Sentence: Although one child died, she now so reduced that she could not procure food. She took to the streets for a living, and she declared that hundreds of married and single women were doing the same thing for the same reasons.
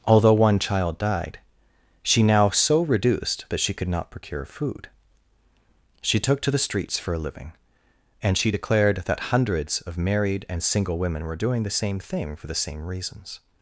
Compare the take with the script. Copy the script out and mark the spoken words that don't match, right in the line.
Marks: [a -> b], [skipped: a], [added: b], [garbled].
Although one child died, she now so reduced that she could not procure food. She took to the streets for a living, and she declared that hundreds of married and single women were doing the same thing for the same reasons.